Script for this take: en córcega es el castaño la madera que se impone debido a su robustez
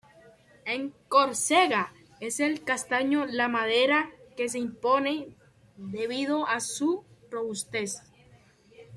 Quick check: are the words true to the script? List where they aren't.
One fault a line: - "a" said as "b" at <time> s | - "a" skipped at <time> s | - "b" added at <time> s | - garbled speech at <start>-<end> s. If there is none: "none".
none